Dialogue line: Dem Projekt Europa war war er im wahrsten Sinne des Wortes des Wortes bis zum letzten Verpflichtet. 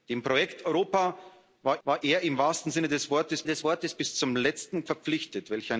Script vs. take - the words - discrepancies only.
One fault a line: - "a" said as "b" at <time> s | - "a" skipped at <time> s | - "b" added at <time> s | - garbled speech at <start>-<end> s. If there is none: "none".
none